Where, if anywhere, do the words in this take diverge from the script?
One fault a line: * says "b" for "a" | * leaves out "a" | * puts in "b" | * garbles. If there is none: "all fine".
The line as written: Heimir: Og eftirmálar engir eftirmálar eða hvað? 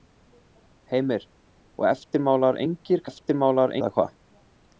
all fine